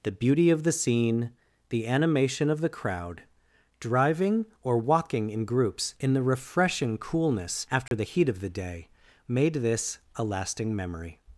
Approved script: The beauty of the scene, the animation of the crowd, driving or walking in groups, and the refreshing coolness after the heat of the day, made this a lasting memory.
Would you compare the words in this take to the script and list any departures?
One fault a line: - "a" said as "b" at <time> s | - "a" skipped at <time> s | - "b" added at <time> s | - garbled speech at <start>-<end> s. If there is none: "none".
- "and" said as "in" at 6.0 s